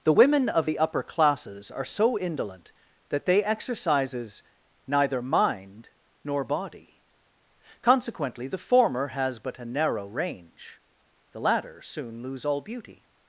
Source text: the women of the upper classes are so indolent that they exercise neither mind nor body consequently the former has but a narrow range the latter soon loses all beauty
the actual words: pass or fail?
fail